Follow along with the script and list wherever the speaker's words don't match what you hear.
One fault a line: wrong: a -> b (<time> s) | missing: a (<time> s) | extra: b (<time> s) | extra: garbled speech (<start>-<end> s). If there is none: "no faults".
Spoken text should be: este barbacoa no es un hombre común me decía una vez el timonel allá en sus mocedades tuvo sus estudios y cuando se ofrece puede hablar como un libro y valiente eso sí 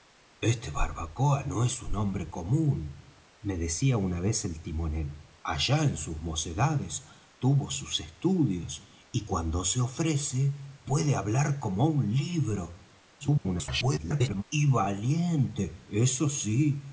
extra: garbled speech (13.2-14.4 s)